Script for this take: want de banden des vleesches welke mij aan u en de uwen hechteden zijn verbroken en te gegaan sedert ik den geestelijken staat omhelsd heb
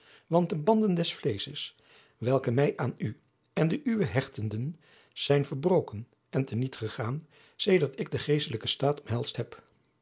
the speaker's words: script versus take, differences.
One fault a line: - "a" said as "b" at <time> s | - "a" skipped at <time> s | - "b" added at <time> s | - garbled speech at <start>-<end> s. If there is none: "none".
- "niet" added at 6.6 s